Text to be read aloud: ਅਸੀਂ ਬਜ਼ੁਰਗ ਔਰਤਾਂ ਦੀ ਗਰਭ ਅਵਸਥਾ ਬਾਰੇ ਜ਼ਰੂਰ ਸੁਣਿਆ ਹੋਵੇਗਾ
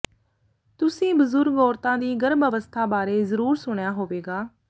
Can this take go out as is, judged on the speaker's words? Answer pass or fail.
fail